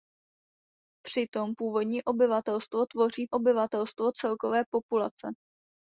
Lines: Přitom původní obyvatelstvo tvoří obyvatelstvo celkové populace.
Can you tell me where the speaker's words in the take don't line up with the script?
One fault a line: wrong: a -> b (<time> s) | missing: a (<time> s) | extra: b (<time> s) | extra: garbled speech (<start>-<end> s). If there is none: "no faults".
no faults